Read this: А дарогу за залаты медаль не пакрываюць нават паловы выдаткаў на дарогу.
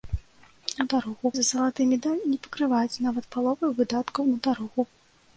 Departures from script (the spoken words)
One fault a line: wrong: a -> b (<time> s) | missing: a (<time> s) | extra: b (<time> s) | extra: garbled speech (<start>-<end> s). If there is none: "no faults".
no faults